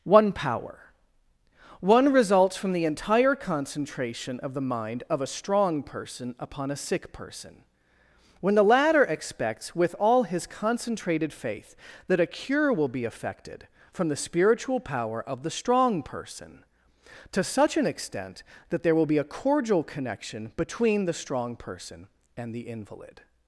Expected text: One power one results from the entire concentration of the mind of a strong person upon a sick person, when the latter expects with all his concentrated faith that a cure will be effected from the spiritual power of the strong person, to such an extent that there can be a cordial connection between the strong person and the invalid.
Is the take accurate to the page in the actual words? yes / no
no